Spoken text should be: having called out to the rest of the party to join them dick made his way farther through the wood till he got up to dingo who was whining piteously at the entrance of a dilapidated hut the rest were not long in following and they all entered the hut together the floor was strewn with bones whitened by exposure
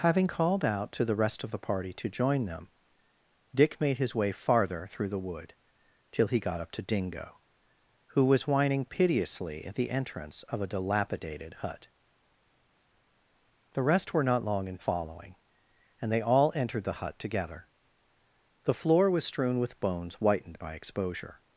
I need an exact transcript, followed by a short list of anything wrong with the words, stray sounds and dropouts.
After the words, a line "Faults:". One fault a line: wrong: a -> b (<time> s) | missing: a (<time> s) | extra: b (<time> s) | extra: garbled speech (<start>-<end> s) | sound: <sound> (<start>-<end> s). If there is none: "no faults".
having called out to the rest of the party to join them dick made his way farther through the wood till he got up to dingo who was whining piteously at the entrance of a dilapidated hut the rest were not long in following and they all entered the hut together the floor was strewn with bones whitened by exposure
Faults:
no faults